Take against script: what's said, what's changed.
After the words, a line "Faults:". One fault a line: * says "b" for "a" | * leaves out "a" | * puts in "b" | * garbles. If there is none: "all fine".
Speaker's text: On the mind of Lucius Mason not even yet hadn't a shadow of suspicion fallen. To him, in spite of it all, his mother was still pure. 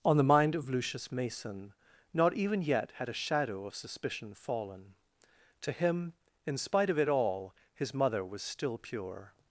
On the mind of Lucius Mason not even yet had a shadow of suspicion fallen. To him, in spite of it all, his mother was still pure.
Faults:
* says "had" for "hadn't"